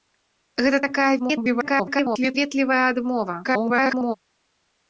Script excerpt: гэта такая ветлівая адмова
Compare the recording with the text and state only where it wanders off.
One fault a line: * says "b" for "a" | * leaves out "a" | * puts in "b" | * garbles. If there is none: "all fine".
* garbles
* garbles